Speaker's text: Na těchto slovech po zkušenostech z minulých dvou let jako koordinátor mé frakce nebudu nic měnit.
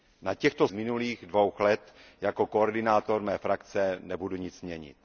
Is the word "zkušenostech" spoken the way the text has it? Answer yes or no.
no